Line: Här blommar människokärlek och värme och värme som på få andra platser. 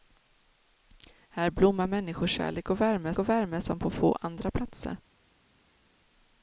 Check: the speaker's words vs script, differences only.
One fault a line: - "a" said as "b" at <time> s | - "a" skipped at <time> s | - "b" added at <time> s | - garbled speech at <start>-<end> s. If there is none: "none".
none